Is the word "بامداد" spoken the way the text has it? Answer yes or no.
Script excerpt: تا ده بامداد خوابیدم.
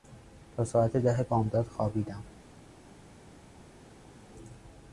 yes